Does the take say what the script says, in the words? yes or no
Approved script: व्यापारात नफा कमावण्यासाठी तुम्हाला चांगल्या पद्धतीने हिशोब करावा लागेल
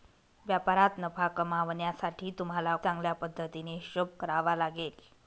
yes